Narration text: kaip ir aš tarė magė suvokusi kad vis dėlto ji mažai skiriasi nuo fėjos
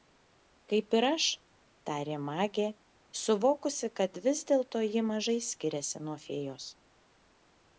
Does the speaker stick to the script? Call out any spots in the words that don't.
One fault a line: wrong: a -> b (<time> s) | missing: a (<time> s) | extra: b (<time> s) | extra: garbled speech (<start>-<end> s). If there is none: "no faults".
no faults